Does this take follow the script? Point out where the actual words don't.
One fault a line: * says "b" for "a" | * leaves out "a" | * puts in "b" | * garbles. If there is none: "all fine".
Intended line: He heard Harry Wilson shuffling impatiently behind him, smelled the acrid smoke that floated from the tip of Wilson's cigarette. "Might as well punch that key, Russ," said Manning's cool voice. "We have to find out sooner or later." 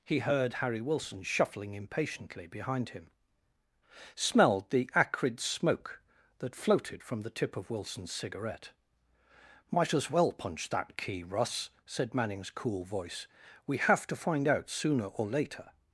all fine